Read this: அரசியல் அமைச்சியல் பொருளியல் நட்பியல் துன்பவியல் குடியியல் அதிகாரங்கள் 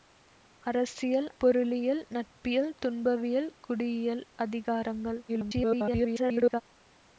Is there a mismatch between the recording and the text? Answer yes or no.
yes